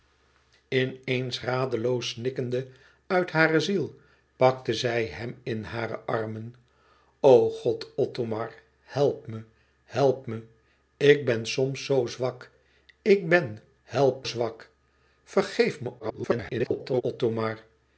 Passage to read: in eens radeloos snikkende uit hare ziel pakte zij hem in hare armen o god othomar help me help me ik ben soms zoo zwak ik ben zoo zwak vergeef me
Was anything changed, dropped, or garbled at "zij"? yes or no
no